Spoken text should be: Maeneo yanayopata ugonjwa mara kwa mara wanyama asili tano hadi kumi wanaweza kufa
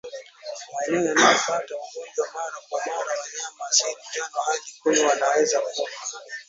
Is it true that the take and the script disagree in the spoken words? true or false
false